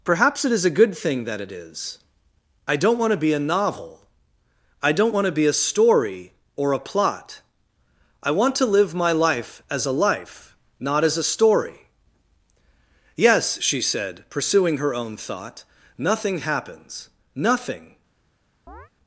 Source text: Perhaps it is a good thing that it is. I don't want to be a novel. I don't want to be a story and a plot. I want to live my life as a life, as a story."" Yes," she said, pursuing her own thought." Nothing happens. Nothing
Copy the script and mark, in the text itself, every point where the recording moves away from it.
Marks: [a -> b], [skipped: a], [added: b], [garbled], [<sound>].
Perhaps it is a good thing that it is. I don't want to be a novel. I don't want to be a story [and -> or] a plot. I want to live my life as a life, [added: not] as a story."" Yes," she said, pursuing her own thought." Nothing happens. Nothing [chirp]